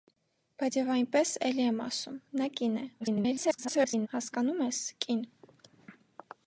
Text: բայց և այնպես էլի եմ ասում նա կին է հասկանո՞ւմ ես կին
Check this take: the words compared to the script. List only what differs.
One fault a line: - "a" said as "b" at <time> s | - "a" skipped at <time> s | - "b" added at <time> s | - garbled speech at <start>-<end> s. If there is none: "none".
- garbled speech at 3.0-4.1 s